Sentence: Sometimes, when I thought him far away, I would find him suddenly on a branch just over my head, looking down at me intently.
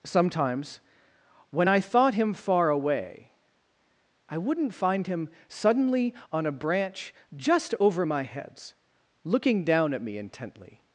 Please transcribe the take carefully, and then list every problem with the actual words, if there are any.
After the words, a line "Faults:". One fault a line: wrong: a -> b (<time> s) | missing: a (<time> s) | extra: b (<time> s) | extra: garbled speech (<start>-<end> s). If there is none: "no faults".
Sometimes, when I thought him far away, I wouldn't find him suddenly on a branch just over my heads, looking down at me intently.
Faults:
wrong: would -> wouldn't (4.4 s)
wrong: head -> heads (8.2 s)